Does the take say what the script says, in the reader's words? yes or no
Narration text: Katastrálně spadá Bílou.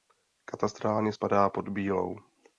no